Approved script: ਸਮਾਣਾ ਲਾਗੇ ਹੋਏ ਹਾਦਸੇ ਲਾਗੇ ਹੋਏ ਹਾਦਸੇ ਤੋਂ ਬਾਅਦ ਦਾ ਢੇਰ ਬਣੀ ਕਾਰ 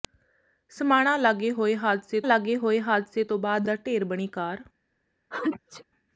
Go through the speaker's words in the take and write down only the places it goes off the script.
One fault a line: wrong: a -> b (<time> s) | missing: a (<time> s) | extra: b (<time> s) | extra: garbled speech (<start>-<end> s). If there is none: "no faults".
no faults